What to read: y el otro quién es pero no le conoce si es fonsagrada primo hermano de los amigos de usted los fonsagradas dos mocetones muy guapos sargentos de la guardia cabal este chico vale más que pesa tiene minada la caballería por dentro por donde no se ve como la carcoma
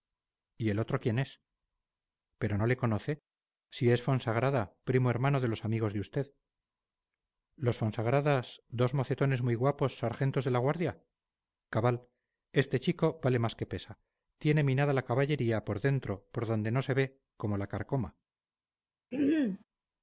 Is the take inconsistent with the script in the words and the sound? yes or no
yes